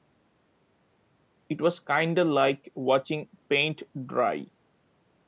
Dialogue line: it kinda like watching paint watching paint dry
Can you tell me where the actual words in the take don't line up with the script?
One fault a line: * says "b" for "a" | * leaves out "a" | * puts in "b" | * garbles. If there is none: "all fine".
* puts in "was"
* leaves out "watching paint"